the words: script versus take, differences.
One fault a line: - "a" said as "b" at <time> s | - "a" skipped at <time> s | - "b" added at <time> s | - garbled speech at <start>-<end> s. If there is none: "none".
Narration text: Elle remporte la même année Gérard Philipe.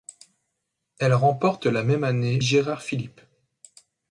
none